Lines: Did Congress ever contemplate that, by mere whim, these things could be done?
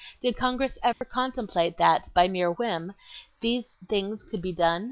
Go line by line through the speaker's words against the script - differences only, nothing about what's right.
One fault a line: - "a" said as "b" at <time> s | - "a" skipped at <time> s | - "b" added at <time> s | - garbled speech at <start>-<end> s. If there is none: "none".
none